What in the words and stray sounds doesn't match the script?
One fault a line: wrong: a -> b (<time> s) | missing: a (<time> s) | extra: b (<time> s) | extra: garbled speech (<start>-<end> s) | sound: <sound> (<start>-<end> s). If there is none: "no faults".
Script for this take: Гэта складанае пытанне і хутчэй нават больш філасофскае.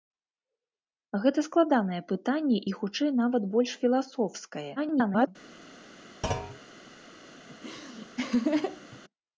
extra: garbled speech (4.8-5.3 s)
sound: thud (6.2-6.6 s)
sound: laugh (7.5-9.0 s)